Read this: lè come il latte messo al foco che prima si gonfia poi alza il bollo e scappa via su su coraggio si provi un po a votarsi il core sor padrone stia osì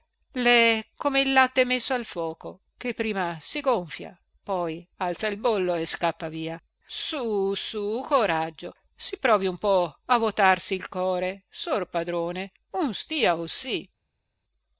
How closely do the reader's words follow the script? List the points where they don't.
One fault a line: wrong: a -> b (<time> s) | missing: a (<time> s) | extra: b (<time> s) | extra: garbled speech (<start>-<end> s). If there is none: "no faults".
extra: un (12.7 s)